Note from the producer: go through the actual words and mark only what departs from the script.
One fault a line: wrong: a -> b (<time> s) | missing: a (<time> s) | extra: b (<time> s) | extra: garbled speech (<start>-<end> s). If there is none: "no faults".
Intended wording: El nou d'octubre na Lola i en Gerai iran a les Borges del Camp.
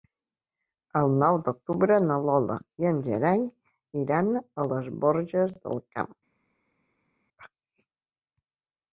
no faults